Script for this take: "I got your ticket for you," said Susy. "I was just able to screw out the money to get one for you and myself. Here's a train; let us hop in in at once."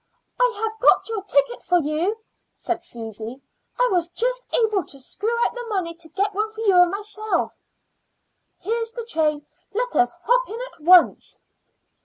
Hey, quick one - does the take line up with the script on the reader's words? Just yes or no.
no